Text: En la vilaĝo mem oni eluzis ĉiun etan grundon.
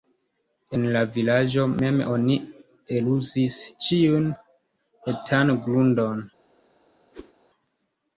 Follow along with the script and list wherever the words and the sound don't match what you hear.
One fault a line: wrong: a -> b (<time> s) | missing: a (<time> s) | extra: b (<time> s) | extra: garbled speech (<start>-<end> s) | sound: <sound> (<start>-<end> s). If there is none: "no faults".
sound: whoosh (7.1-7.3 s)